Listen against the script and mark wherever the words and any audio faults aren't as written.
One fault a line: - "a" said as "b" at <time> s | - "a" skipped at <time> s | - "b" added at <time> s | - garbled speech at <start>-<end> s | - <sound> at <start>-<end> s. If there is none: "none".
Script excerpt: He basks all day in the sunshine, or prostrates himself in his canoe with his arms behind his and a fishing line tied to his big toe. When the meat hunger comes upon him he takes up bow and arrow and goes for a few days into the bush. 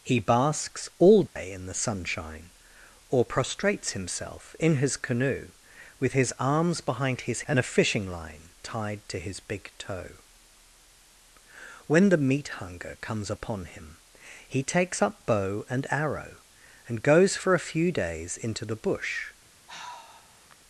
- dropout at 1.3-1.4 s
- sigh at 19.7-20.6 s